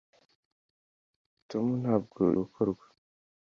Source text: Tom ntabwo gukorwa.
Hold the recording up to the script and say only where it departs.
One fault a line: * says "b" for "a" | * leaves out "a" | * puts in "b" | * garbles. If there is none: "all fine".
all fine